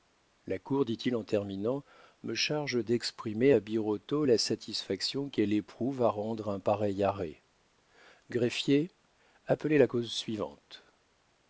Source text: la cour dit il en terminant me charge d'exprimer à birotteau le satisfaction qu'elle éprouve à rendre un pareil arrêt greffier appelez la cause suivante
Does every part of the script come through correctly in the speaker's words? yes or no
no